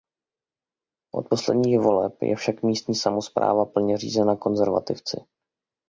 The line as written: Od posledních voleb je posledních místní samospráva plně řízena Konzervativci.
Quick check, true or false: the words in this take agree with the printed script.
false